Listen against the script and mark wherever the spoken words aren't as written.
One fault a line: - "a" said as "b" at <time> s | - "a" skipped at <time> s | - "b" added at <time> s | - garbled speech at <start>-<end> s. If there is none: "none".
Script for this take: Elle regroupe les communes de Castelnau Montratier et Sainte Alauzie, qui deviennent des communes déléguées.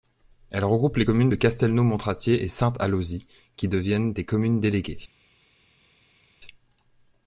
none